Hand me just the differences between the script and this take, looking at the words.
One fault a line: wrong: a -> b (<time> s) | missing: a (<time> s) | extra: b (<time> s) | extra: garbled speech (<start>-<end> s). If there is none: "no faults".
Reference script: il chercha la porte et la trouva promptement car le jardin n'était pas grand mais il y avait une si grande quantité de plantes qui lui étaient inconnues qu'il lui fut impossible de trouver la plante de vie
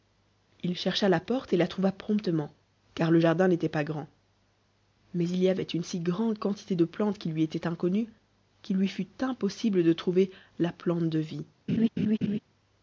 no faults